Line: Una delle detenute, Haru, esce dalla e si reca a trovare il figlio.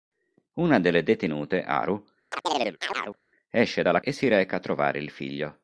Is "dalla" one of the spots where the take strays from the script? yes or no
no